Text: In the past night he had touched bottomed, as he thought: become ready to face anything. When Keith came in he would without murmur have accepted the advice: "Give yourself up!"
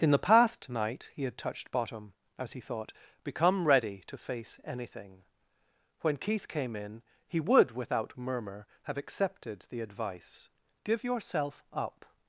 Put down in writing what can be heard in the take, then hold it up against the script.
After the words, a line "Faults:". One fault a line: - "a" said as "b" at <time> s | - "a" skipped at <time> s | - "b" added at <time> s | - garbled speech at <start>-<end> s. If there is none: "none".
In the past night he had touched bottom, as he thought: become ready to face anything. When Keith came in he would without murmur have accepted the advice: "Give yourself up!"
Faults:
- "bottomed" said as "bottom" at 1.7 s